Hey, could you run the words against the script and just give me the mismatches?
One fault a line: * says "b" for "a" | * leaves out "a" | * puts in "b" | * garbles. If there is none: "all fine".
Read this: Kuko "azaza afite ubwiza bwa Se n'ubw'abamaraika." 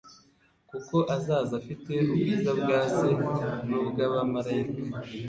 all fine